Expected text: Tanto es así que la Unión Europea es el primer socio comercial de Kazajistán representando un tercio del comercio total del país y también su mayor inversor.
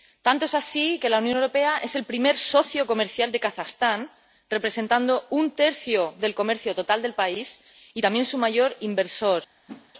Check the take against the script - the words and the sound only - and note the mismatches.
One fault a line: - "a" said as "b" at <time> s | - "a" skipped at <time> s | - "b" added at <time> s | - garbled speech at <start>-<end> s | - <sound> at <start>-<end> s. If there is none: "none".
- whoosh at 9.7-9.9 s